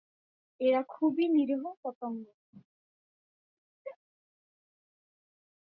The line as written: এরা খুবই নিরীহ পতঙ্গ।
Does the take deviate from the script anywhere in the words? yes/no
no